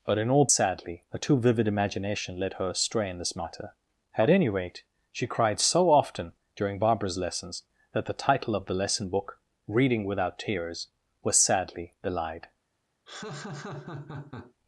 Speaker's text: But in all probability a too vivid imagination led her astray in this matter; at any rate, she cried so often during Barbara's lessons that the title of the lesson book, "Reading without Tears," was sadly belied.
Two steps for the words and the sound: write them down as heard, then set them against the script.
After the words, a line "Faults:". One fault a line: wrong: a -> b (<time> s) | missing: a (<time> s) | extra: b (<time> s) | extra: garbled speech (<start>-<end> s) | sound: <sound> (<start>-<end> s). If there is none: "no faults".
But in all sadly a too vivid imagination led her astray in this matter; at any rate, she cried so often during Barbara's lessons that the title of the lesson book, "Reading without Tears," was sadly belied.
Faults:
wrong: probability -> sadly (0.5 s)
sound: laugh (13.1-14.5 s)